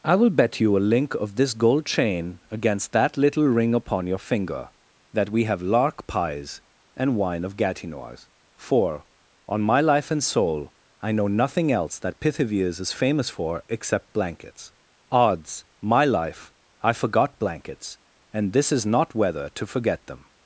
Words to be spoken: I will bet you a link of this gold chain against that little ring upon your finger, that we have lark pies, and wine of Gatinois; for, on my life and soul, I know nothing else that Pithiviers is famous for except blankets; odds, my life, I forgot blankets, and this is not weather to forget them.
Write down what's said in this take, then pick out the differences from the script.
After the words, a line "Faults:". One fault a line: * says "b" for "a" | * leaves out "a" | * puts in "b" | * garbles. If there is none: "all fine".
I will bet you a link of this gold chain against that little ring upon your finger, that we have lark pies, and wine of Gatinois; for, on my life and soul, I know nothing else that Pithiviers is famous for except blankets; odds, my life, I forgot blankets, and this is not weather to forget them.
Faults:
all fine